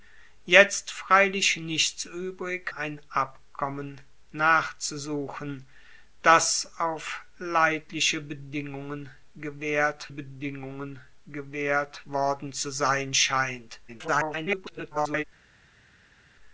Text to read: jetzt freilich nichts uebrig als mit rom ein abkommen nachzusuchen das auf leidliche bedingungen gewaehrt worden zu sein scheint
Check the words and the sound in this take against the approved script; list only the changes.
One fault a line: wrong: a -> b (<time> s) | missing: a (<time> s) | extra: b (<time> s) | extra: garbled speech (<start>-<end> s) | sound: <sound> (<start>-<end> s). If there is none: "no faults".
missing: als mit rom (2.7 s)
extra: bedingungen gewaehrt (10.1 s)
extra: garbled speech (13.9-15.2 s)